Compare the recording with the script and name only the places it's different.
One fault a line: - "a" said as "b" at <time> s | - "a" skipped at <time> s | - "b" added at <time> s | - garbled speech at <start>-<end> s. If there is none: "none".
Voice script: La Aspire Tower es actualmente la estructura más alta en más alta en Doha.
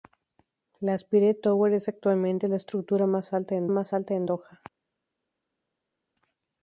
none